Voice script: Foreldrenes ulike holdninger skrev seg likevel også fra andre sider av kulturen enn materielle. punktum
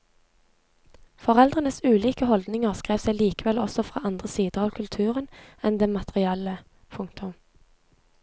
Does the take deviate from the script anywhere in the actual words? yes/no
yes